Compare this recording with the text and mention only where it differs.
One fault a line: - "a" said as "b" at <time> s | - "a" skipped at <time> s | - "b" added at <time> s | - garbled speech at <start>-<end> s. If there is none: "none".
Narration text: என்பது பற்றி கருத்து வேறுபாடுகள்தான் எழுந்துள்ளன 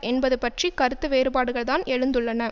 none